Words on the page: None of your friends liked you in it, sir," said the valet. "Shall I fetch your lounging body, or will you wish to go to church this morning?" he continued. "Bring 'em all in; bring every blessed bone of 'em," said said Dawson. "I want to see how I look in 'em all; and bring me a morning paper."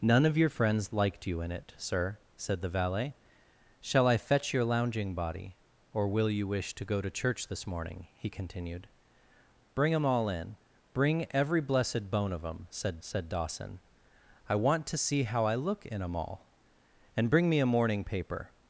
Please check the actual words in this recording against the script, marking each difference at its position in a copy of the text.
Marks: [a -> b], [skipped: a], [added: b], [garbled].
None of your friends liked you in it, sir," said the valet. "Shall I fetch your lounging body, or will you wish to go to church this morning?" he continued. "Bring 'em all in; bring every blessed bone of 'em," said said Dawson. "I want to see how I look in 'em all; and bring me a morning paper."